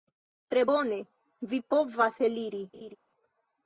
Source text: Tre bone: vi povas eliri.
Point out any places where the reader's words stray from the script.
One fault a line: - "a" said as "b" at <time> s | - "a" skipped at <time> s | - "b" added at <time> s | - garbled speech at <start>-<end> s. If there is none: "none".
none